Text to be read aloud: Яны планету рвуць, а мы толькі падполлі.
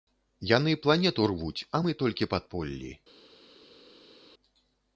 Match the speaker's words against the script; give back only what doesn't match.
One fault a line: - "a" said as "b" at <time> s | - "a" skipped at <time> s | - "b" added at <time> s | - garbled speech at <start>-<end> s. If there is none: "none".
none